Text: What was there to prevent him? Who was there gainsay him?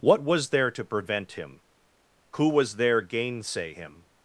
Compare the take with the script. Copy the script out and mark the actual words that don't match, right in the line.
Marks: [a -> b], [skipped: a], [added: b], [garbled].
What was there to prevent him? Who was there gainsay him?